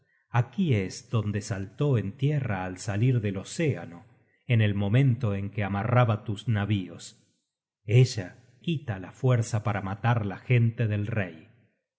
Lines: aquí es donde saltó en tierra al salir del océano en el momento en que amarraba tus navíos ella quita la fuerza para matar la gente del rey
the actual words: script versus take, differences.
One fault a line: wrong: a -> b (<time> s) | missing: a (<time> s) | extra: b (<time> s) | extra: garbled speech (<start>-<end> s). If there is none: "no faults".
no faults